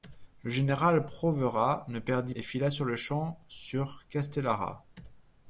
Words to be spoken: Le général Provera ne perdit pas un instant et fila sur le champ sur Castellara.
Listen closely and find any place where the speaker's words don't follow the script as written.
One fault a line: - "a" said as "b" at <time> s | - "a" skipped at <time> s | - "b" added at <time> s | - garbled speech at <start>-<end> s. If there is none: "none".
- "pas un instant" skipped at 2.3 s